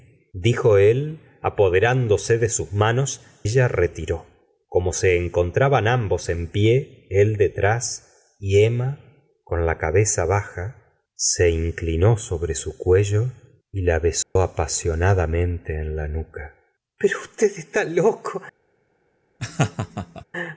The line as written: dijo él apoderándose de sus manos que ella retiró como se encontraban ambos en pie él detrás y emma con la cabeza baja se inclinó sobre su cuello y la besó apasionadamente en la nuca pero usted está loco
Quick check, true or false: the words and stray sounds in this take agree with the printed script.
false